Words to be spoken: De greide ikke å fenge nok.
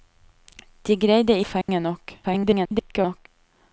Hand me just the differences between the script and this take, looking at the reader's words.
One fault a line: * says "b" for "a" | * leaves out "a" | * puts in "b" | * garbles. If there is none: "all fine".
* leaves out "ikke"
* garbles